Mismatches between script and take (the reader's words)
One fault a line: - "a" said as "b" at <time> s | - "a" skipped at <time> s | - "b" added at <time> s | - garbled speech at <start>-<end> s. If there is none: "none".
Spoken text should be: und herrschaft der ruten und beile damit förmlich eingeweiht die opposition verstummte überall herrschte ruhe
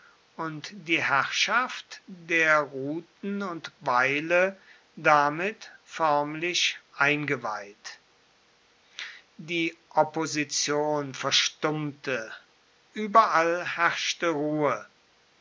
- "die" added at 0.7 s